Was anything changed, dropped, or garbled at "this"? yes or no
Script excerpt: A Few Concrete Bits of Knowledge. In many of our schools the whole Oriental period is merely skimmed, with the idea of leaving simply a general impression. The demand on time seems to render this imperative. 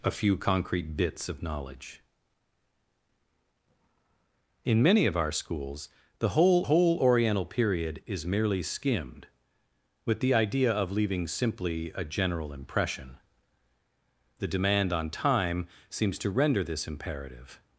no